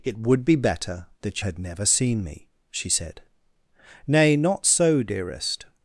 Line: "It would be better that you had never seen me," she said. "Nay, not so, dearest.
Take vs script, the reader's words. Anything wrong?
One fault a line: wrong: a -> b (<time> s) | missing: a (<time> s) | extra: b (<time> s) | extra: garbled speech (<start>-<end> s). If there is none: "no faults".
missing: you (1.4 s)